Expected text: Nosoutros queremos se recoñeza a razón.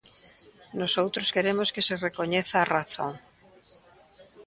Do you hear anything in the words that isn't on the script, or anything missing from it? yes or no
yes